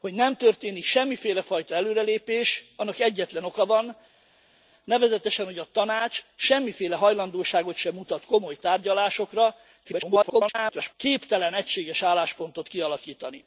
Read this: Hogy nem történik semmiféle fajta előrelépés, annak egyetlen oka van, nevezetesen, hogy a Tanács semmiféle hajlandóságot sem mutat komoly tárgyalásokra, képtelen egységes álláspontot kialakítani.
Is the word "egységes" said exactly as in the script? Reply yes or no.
yes